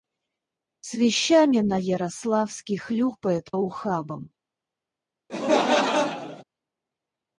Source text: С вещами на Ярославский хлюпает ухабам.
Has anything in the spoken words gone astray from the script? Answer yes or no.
no